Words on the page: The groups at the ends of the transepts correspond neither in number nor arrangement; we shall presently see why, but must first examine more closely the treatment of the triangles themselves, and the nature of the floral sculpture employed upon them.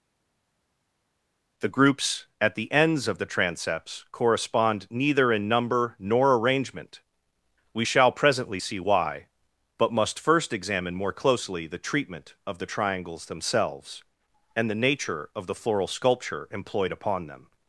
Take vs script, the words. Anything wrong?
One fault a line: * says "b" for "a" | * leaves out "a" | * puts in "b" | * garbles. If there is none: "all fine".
all fine